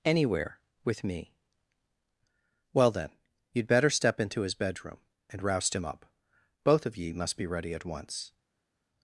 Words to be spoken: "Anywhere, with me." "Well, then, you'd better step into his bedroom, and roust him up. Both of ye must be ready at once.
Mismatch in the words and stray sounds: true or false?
false